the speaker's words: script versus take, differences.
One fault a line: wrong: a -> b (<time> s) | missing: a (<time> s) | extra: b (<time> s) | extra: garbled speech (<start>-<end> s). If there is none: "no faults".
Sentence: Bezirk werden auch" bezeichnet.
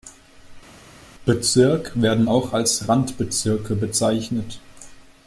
extra: als Randbezirke (2.5 s)